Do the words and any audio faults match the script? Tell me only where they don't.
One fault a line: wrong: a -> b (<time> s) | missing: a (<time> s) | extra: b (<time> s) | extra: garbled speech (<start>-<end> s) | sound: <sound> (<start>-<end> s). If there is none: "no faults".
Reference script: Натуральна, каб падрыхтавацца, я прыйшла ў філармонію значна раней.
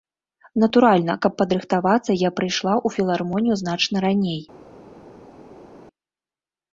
no faults